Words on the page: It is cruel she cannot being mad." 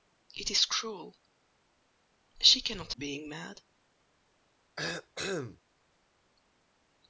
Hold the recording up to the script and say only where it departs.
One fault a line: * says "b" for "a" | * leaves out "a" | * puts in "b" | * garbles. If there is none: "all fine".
all fine